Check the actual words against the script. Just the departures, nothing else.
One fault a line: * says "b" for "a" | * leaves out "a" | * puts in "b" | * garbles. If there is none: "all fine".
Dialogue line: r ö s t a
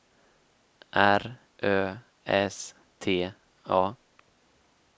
all fine